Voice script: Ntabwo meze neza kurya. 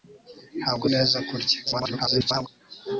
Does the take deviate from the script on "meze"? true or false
true